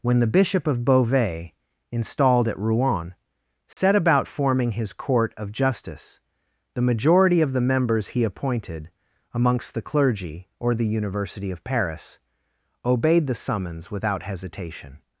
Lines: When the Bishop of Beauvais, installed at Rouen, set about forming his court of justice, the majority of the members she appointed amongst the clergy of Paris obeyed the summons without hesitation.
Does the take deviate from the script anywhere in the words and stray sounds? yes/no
yes